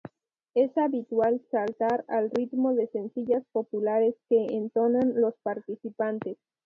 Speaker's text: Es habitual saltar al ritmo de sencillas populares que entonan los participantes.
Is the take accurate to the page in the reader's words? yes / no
yes